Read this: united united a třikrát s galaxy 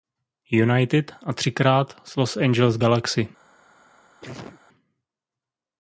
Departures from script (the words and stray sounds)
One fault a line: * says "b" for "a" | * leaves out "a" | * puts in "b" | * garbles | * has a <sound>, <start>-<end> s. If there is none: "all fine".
* leaves out "united"
* puts in "los angeles"
* has a sneeze, 4.2-4.6 s